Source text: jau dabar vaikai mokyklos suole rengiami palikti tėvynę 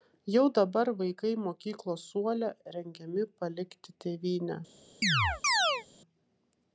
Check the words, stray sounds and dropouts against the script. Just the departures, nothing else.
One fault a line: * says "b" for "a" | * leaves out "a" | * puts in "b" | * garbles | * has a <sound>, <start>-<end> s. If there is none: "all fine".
* has a chirp, 5.0-5.8 s